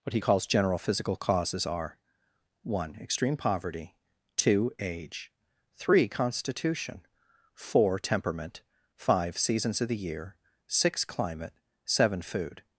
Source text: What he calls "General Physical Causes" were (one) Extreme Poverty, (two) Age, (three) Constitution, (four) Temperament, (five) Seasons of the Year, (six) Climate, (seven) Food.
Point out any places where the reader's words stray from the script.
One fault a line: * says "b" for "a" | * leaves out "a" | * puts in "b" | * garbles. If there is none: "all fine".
* says "are" for "were"